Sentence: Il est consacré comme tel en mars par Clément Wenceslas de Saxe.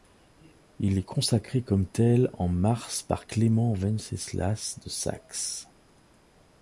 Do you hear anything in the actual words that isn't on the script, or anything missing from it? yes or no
no